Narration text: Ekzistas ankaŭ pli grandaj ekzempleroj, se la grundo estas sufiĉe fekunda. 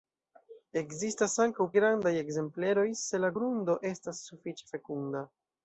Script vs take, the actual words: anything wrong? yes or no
yes